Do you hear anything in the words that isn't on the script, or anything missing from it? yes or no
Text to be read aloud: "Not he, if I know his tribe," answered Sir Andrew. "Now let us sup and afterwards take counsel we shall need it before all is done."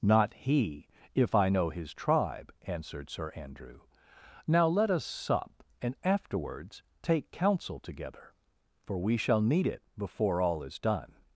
yes